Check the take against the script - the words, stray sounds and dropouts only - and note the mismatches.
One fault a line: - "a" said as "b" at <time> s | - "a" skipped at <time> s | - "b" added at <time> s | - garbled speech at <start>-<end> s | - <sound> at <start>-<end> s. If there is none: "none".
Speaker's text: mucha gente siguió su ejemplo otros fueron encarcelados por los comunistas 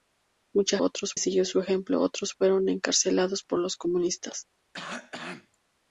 - "gente" said as "otros" at 0.8 s
- cough at 4.7-5.6 s